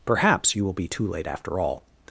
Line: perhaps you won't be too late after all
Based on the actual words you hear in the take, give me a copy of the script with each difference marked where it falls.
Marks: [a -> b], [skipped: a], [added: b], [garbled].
perhaps you [won't -> will] be too late after all